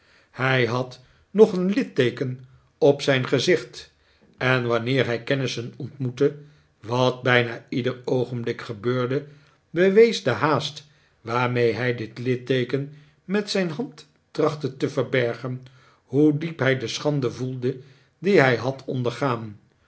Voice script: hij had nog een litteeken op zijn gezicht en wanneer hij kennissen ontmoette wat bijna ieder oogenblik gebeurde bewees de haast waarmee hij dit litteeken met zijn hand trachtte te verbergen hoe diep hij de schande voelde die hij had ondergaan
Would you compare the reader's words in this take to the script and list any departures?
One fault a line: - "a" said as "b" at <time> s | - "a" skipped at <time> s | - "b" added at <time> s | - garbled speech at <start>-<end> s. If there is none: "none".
none